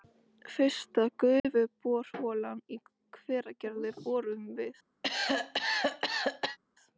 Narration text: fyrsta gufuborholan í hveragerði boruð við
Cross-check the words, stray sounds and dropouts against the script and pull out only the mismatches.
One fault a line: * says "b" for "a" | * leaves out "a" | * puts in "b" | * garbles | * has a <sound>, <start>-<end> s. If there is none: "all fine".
* has a dropout, 1.4-1.4 s
* has a cough, 5.0-6.6 s